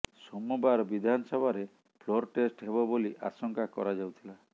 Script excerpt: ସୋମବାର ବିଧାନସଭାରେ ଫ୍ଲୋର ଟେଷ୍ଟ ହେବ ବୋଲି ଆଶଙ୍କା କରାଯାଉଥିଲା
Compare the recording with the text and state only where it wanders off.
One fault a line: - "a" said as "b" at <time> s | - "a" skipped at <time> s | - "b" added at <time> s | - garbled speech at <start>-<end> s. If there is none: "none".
none